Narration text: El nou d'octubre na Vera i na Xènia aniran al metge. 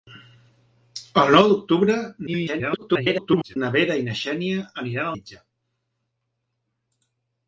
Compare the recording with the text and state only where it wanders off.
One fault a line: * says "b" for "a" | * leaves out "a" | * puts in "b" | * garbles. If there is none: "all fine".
* garbles
* leaves out "al"